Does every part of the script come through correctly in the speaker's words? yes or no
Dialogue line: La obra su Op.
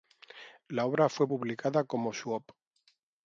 no